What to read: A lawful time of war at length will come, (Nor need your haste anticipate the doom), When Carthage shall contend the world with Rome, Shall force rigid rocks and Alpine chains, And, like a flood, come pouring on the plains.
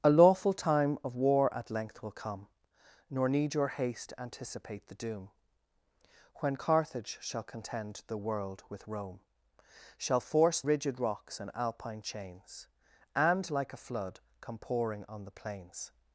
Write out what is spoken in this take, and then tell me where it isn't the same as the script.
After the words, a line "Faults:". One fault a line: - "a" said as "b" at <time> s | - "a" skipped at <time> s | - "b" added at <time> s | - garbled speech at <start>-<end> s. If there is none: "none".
A lawful time of war at length will come, (Nor need your haste anticipate the doom), When Carthage shall contend the world with Rome, Shall force rigid rocks and Alpine chains, And, like a flood, come pouring on the plains.
Faults:
none